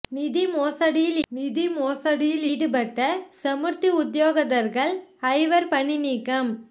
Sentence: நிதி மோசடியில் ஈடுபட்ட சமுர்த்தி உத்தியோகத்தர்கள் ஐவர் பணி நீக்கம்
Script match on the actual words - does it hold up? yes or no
no